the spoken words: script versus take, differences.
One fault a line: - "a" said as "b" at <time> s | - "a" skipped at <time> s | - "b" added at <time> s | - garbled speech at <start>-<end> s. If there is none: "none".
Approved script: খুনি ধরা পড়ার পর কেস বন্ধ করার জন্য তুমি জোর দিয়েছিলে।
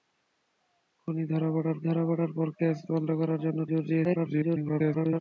- "ধরা পড়ার" added at 1.8 s
- "তুমি" skipped at 3.6 s
- garbled speech at 4.0-5.2 s